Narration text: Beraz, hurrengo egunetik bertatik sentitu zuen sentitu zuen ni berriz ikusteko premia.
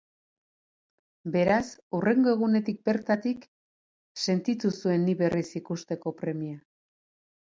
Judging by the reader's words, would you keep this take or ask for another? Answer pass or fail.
fail